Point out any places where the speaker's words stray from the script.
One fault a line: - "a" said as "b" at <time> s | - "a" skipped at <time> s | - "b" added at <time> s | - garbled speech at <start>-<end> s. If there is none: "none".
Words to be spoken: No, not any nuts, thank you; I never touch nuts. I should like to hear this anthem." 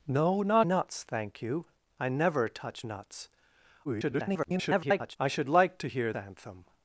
- "any" skipped at 0.7 s
- garbled speech at 3.8-5.2 s
- "this" skipped at 6.1 s